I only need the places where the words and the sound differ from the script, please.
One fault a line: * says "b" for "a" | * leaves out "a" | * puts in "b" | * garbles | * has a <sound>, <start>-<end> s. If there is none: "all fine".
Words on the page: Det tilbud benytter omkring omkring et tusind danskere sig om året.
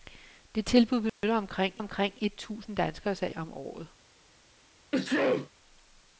* has a dropout, 1.1-1.2 s
* has a sneeze, 4.9-5.5 s